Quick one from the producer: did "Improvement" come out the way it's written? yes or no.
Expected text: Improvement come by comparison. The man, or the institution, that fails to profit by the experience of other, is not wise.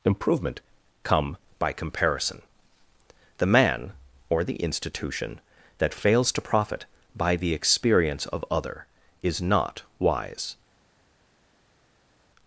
yes